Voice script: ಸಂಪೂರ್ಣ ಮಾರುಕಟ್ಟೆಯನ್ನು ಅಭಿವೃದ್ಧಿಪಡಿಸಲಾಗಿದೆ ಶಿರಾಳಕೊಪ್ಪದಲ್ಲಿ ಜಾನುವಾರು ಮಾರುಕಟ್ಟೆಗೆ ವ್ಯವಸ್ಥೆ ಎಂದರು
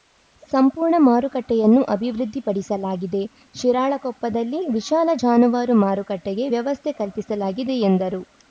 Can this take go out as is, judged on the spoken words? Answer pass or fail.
fail